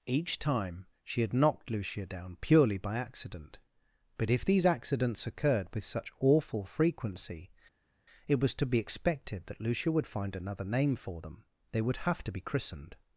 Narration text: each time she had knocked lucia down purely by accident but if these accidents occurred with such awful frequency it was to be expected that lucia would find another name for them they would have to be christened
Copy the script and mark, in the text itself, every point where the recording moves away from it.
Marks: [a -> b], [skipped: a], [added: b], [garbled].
each time she had knocked lucia down purely by accident but if these accidents occurred with such awful frequency it was to be expected that lucia would find another name for them they would have to be christened